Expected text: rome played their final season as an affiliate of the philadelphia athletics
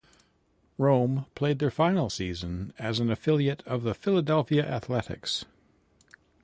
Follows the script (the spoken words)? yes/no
yes